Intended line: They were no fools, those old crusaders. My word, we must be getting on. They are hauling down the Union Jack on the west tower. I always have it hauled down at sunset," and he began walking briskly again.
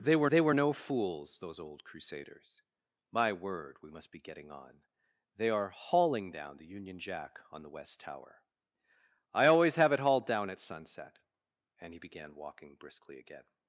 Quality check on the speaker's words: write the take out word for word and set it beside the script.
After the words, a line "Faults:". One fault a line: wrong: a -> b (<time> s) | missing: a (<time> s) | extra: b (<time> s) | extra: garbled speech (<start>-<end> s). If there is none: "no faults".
They were they were no fools, those old crusaders. My word, we must be getting on. They are hauling down the Union Jack on the west tower. I always have it hauled down at sunset," and he began walking briskly again.
Faults:
extra: they were (0.3 s)